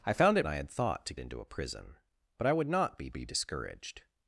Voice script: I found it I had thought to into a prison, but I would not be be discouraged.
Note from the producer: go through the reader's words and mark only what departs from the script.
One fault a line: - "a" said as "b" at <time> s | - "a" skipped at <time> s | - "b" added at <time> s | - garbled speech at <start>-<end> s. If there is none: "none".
none